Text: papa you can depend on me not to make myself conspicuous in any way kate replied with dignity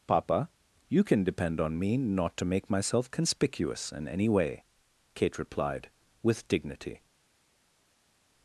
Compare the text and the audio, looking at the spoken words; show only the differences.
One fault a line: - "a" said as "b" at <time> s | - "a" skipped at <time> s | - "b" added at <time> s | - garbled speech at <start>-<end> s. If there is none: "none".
none